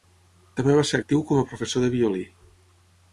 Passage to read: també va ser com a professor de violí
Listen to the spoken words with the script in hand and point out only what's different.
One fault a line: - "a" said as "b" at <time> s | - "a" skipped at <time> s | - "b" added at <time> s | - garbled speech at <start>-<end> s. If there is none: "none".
- "actiu" added at 1.0 s